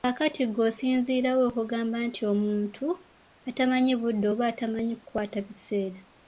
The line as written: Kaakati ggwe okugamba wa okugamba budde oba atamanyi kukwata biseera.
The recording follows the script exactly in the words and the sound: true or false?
false